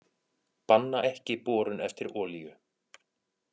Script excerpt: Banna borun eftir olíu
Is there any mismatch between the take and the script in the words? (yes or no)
yes